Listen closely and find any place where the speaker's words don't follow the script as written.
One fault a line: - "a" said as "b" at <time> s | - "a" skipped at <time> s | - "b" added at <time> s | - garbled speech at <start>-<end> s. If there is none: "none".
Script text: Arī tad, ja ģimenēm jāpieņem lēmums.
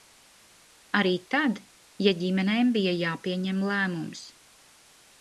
- "bija" added at 2.8 s